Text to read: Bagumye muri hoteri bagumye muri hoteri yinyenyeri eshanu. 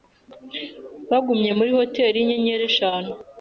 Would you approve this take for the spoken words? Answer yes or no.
no